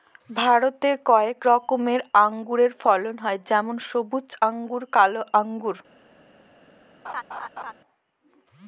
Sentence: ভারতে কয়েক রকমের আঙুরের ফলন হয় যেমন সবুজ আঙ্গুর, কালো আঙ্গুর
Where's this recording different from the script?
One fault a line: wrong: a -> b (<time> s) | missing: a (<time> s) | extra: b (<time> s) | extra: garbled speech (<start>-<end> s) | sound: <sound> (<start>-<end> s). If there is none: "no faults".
sound: laugh (7.0-7.7 s)